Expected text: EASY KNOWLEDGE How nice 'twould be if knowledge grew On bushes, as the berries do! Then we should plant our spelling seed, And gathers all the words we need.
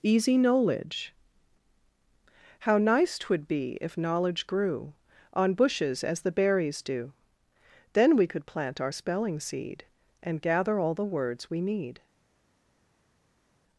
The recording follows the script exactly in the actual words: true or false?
false